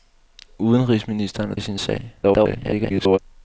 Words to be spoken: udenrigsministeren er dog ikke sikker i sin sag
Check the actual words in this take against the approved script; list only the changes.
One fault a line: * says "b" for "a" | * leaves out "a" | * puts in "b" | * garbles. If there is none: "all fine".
* leaves out "dog ikke sikker"
* garbles